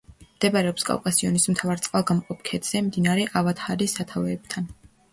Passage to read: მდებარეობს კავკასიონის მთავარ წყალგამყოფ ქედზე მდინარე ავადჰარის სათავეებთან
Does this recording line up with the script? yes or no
yes